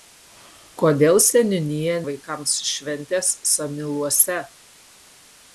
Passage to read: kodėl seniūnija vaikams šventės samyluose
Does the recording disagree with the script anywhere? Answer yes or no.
no